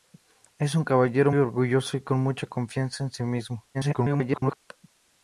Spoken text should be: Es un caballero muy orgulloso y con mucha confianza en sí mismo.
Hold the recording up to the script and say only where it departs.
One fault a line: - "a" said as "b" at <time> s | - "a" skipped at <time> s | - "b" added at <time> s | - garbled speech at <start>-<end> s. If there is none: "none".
- "muy" skipped at 1.3 s
- garbled speech at 3.7-4.6 s